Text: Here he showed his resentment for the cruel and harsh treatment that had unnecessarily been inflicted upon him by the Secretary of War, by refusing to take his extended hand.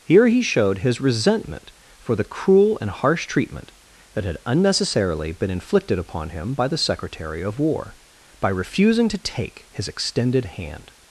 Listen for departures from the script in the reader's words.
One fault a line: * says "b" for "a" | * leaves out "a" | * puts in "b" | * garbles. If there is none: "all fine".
all fine